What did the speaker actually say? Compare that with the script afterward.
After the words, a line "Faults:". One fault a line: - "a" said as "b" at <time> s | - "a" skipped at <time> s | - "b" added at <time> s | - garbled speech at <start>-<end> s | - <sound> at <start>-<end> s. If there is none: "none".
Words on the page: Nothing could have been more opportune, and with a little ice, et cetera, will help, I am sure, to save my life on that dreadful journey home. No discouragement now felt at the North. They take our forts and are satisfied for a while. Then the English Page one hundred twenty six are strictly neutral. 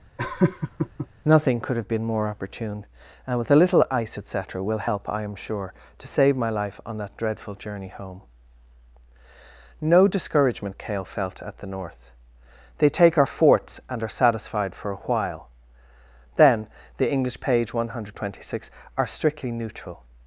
Nothing could have been more opportune, and with a little ice, et cetera, will help, I am sure, to save my life on that dreadful journey home. No discouragement cale felt at the North. They take our forts and are satisfied for a while. Then the English Page one hundred twenty six are strictly neutral.
Faults:
- laugh at 0.2-1.1 s
- "now" said as "cale" at 10.8 s